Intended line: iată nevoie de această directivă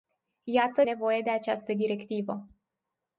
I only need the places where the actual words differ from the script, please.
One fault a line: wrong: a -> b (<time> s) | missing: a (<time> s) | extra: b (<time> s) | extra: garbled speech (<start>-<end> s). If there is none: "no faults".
no faults